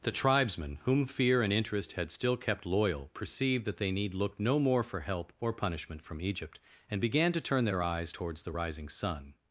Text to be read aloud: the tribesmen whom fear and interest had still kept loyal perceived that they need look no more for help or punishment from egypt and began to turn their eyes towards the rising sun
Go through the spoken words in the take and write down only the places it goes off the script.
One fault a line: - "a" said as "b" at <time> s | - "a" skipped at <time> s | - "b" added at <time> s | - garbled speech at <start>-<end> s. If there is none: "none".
none